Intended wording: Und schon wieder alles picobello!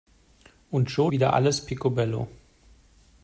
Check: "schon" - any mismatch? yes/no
no